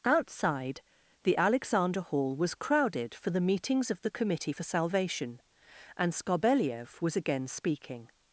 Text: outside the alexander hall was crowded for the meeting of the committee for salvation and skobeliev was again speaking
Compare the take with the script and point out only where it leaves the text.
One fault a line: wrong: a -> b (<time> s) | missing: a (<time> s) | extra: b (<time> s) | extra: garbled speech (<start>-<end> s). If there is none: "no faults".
wrong: meeting -> meetings (3.4 s)